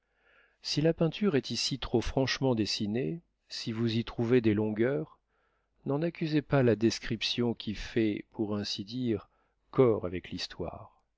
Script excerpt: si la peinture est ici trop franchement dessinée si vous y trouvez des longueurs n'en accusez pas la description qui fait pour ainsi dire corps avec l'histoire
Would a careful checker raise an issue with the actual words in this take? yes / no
no